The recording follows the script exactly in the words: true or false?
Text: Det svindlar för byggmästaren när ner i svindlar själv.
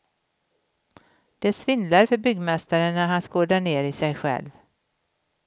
false